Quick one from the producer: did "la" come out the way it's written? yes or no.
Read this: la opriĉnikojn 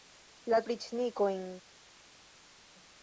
yes